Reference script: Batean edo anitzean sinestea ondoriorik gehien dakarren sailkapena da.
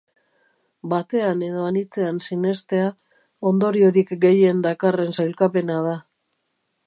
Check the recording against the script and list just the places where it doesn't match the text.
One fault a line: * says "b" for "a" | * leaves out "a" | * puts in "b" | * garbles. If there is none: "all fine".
all fine